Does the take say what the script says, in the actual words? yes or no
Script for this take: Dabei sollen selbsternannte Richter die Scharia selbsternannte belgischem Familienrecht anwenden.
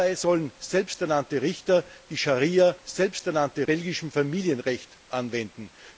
yes